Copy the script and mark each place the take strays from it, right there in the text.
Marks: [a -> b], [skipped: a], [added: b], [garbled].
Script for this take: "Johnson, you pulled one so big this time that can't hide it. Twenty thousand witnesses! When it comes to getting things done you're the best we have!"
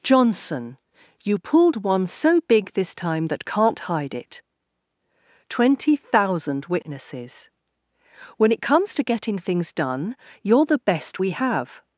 "Johnson, you pulled one so big this time that can't hide it. Twenty thousand witnesses! When it comes to getting things done you're the best we have!"